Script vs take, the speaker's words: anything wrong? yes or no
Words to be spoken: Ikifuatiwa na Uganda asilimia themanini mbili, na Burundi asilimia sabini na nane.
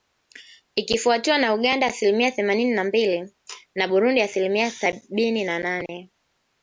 yes